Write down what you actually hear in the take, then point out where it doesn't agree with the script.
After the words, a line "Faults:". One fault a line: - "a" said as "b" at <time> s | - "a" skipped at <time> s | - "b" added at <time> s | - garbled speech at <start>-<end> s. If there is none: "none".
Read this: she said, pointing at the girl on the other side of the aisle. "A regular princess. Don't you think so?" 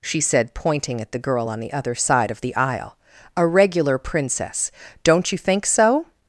she said, pointing at the girl on the other side of the aisle. "A regular princess. Don't you think so?"
Faults:
none